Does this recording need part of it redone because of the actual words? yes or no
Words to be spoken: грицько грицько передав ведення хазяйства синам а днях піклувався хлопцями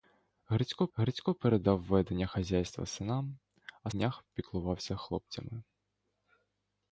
no